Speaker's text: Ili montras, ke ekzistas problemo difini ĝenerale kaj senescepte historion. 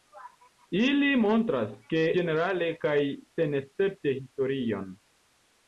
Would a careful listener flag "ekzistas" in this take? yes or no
yes